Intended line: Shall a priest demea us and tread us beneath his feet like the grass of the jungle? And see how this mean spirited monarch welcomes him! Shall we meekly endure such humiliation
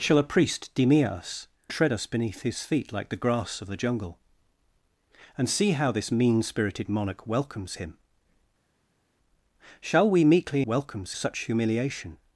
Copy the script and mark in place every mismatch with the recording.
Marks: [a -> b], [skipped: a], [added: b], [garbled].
Shall a priest demea us [skipped: and] tread us beneath his feet like the grass of the jungle? And see how this mean spirited monarch welcomes him! Shall we meekly [endure -> welcomes] such humiliation